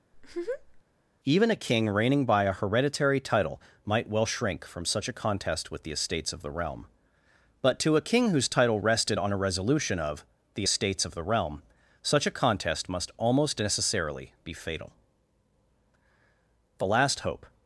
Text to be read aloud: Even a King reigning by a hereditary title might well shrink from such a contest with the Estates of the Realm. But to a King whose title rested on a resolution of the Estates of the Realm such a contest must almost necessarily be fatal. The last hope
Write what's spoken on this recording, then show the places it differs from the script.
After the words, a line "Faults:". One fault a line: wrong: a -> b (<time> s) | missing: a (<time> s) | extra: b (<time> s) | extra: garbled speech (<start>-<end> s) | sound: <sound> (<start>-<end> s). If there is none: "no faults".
Even a King reigning by a hereditary title might well shrink from such a contest with the Estates of the Realm. But to a King whose title rested on a resolution of the Estates of the Realm such a contest must almost necessarily be fatal. The last hope
Faults:
sound: laugh (0.1-0.8 s)